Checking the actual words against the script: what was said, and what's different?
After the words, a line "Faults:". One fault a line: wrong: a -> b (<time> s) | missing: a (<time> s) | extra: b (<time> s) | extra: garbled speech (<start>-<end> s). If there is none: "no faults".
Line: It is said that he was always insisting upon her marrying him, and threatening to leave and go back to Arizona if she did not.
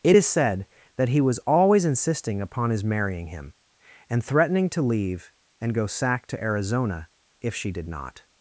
It is said that he was always insisting upon his marrying him, and threatening to leave and go sack to Arizona if she did not.
Faults:
wrong: her -> his (2.7 s)
wrong: back -> sack (5.9 s)